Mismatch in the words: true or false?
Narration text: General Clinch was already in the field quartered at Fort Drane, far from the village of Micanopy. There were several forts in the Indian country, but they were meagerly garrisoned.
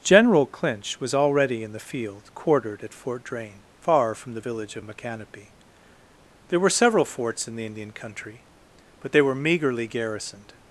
false